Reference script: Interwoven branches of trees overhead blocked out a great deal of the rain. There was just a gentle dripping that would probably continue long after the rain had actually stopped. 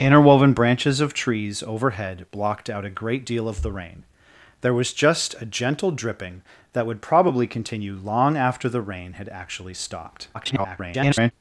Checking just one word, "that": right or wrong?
right